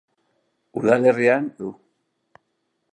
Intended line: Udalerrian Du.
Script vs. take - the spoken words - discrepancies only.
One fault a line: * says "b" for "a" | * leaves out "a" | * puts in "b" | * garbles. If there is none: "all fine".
all fine